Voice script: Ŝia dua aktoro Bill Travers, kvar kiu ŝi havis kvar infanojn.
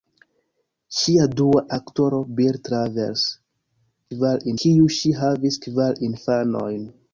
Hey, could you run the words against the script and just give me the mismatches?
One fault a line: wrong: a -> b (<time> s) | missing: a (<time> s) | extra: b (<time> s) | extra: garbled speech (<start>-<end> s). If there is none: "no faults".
no faults